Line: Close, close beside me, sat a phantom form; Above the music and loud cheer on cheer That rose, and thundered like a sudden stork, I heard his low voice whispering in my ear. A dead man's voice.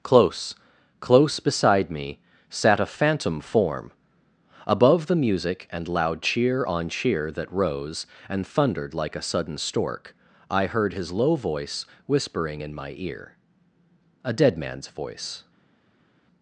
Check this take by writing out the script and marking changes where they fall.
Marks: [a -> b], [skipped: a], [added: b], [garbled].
Close, close beside me, sat a phantom form; Above the music and loud cheer on cheer That rose, and thundered like a sudden stork, I heard his low voice whispering in my ear. A dead man's voice.